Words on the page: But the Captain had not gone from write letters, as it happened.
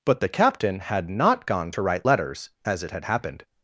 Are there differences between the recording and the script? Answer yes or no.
yes